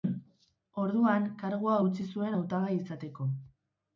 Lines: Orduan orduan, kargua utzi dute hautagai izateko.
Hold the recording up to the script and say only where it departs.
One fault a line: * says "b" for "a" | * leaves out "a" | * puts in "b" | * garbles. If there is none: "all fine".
* leaves out "orduan"
* says "zuen" for "dute"